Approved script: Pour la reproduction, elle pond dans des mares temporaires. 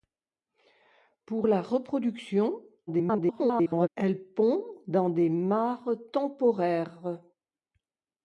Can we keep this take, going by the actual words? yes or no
no